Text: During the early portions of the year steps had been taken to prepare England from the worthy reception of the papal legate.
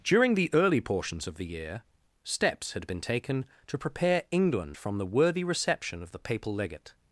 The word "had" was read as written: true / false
true